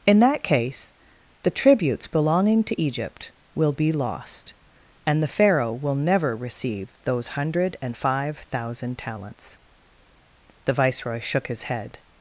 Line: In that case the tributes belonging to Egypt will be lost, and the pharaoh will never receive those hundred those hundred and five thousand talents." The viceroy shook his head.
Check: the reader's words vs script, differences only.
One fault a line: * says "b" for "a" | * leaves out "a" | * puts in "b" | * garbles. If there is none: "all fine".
* leaves out "those hundred"